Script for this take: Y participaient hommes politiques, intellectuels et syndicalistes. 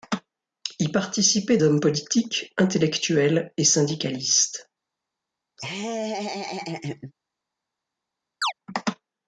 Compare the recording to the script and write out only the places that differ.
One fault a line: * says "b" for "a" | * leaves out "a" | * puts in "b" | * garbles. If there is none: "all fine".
all fine